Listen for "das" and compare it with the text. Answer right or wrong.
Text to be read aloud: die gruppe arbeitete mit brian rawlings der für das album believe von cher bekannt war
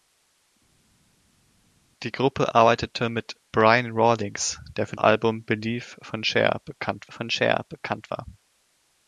wrong